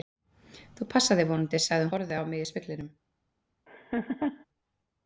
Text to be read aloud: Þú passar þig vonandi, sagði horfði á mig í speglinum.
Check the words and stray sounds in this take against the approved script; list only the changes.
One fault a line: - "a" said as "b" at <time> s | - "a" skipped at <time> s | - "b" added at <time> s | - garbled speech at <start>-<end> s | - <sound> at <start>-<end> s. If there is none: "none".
- laugh at 3.7-4.5 s